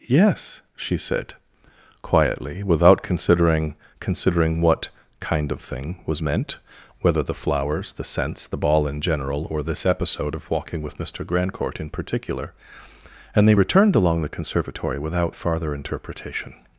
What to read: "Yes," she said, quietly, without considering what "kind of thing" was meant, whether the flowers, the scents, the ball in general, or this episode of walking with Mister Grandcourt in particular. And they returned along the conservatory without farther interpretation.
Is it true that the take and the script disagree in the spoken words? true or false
true